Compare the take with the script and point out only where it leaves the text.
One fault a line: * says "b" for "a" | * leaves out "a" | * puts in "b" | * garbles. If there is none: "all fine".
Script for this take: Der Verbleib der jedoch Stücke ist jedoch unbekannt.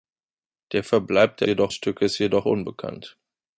all fine